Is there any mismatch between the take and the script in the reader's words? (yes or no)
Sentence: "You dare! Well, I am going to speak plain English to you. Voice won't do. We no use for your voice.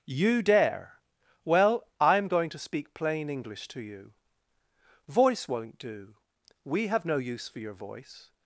yes